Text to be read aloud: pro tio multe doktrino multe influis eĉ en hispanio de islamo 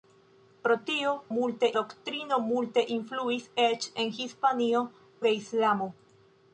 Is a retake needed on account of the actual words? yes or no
no